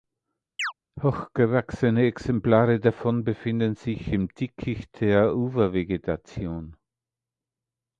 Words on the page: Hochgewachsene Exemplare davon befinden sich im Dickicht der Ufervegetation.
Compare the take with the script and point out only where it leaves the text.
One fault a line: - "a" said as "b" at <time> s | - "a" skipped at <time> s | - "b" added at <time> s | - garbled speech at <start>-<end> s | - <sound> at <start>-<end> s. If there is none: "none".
- chirp at 0.6-0.7 s